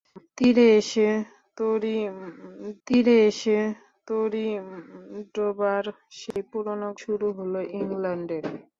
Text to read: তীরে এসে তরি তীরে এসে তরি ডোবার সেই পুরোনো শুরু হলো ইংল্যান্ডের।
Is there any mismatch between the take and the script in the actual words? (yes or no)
no